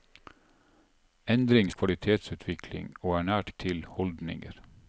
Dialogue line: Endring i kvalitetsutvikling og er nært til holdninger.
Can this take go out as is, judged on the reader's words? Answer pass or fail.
pass